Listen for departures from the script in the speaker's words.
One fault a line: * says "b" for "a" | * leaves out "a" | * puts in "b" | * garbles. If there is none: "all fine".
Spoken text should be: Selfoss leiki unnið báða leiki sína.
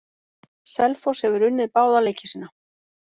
* says "hefur" for "leiki"